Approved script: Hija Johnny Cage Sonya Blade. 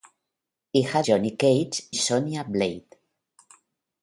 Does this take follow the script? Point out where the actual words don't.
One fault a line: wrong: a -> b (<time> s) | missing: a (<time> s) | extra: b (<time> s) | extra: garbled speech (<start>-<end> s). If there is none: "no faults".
no faults